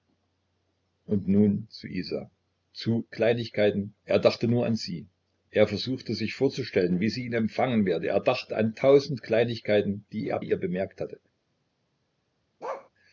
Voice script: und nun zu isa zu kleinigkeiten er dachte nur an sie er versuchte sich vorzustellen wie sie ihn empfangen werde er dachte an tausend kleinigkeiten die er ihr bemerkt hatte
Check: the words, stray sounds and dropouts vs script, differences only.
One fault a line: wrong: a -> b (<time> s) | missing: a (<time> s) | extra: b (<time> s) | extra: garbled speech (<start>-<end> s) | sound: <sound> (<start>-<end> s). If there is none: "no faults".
sound: bark (12.6-12.9 s)